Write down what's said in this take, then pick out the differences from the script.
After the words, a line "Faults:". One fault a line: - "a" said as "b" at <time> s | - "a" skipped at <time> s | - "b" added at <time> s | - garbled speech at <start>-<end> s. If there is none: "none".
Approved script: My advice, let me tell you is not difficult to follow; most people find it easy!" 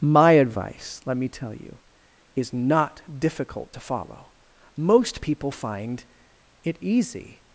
My advice, let me tell you is not difficult to follow; most people find it easy!"
Faults:
none